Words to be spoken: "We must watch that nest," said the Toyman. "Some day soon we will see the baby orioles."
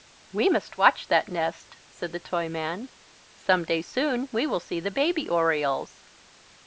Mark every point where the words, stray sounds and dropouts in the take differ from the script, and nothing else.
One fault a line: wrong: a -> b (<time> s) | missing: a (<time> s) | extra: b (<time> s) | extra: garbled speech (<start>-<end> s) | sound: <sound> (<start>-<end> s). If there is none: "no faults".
no faults